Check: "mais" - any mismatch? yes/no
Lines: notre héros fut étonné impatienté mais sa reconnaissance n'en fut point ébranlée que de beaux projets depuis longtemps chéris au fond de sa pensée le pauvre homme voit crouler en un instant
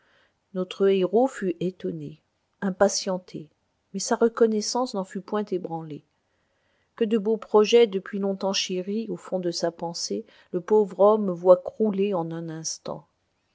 no